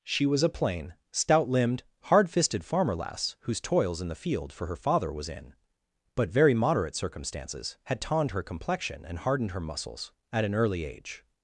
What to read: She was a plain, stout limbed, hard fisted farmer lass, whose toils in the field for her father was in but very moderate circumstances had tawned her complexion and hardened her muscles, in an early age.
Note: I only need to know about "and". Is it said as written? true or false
true